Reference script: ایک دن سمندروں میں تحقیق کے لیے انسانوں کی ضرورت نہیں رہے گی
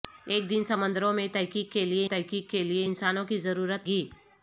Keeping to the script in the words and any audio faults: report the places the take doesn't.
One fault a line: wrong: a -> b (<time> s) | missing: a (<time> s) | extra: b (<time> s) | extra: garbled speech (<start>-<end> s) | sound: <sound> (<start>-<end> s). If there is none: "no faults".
extra: تحقیق کے لیے (2.0 s)
missing: نہیں رہے (3.9 s)